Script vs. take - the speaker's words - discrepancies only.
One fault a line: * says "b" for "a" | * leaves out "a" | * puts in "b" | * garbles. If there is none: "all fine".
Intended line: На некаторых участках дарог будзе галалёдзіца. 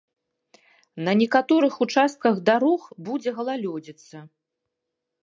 all fine